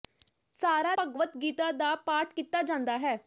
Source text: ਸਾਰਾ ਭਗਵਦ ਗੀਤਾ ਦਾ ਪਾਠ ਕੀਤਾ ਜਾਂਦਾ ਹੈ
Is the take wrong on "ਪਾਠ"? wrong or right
right